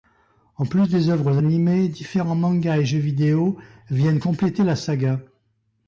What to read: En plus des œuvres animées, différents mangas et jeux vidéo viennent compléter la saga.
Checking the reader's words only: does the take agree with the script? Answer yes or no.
yes